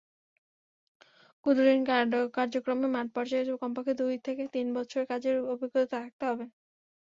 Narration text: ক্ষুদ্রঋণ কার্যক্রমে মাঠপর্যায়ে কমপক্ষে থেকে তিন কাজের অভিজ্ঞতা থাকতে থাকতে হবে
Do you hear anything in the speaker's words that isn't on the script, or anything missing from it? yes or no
yes